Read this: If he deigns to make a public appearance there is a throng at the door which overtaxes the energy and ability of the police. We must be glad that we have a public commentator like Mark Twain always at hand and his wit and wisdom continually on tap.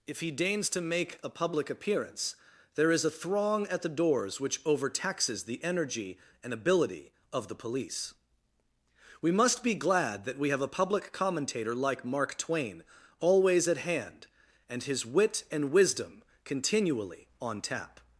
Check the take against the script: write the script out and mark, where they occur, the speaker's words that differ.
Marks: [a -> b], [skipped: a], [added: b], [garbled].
If he deigns to make a public appearance there is a throng at the [door -> doors] which overtaxes the energy and ability of the police. We must be glad that we have a public commentator like Mark Twain always at hand and his wit and wisdom continually on tap.